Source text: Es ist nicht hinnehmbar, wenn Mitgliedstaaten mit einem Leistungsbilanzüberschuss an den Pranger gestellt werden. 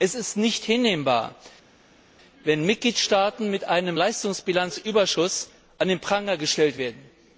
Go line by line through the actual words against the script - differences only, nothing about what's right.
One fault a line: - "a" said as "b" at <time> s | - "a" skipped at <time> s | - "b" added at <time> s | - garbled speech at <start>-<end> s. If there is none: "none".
none